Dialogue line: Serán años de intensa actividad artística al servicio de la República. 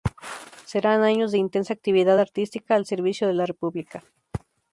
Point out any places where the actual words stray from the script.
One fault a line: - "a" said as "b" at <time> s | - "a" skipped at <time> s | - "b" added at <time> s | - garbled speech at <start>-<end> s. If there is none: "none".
none